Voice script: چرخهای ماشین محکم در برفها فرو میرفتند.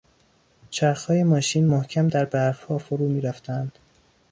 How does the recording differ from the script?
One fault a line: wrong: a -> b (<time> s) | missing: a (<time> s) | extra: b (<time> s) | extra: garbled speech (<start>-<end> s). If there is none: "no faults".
no faults